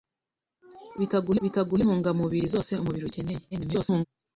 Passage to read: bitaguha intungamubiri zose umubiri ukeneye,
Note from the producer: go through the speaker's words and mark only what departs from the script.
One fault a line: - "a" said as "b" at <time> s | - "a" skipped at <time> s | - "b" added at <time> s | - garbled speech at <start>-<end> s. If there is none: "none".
- "bitaguha" added at 1.4 s
- garbled speech at 3.5-4.1 s